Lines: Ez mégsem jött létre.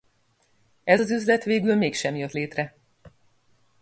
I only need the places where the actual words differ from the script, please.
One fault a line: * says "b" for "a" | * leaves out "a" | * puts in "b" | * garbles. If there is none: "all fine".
* puts in "az üzlet végül"